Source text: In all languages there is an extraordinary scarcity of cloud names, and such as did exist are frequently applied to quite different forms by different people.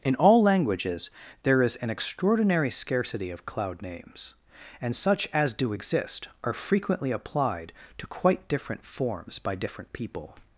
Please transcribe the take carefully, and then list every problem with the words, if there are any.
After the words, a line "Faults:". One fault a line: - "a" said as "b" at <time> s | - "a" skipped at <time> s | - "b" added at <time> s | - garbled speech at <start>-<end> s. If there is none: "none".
In all languages there is an extraordinary scarcity of cloud names, and such as do exist are frequently applied to quite different forms by different people.
Faults:
- "did" said as "do" at 5.5 s